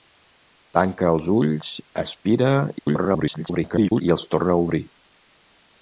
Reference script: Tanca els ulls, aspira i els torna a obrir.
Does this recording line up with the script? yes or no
no